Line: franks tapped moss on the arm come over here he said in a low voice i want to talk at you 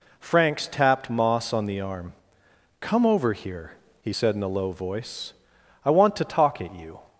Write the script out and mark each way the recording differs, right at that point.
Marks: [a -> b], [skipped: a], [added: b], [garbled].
franks tapped moss on the arm come over here he said in a low voice i want to talk at you